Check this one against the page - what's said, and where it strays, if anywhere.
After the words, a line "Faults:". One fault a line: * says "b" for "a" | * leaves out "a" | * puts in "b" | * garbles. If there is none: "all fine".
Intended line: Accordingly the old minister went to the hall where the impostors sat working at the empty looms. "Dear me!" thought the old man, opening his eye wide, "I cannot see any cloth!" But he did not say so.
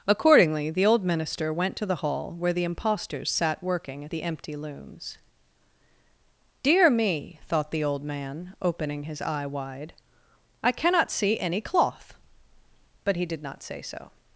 Accordingly the old minister went to the hall where the impostors sat working at the empty looms. "Dear me!" thought the old man, opening his eye wide, "I cannot see any cloth!" But he did not say so.
Faults:
all fine